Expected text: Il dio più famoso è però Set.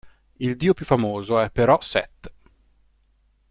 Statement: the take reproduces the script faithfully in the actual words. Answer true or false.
true